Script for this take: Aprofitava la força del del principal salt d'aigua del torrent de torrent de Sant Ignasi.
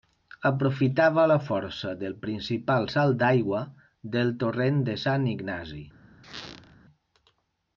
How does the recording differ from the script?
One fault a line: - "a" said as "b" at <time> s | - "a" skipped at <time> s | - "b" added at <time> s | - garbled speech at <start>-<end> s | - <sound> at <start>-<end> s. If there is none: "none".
- "del" skipped at 2.1 s
- "torrent de" skipped at 5.0 s
- squeak at 6.2-6.8 s